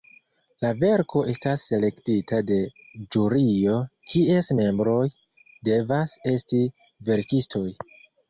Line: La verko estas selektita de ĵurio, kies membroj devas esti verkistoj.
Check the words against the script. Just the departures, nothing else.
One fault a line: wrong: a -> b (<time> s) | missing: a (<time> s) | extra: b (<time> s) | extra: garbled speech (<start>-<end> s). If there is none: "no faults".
no faults